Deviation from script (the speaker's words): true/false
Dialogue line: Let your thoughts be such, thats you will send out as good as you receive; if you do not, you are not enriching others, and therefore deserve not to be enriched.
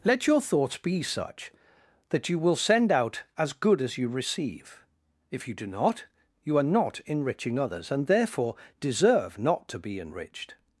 true